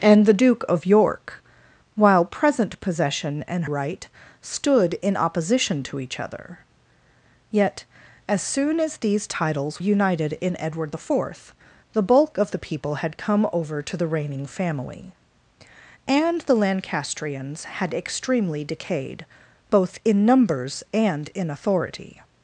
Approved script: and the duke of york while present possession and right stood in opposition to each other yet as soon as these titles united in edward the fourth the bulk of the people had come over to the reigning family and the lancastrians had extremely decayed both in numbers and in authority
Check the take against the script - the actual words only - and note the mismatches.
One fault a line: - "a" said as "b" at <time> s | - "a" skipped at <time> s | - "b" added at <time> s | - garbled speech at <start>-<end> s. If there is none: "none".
none